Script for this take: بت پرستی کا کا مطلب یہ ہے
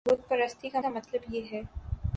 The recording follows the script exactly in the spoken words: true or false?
true